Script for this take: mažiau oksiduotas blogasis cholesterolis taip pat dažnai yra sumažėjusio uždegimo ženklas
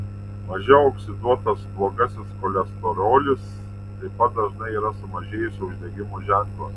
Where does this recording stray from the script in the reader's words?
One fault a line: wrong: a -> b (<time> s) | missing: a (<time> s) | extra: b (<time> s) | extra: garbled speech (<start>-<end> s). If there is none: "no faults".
no faults